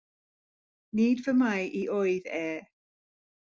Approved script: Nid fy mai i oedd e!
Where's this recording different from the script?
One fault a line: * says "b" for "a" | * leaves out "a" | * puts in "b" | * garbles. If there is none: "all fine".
all fine